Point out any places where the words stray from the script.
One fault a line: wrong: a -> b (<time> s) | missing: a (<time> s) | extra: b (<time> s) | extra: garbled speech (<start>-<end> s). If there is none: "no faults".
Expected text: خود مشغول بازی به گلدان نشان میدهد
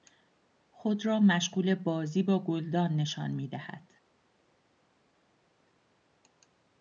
extra: را (1.1 s)
wrong: به -> با (2.2 s)